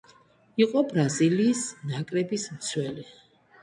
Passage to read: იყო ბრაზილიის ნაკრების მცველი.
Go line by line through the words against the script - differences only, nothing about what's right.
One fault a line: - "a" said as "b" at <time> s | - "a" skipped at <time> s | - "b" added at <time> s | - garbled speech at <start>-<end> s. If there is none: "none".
none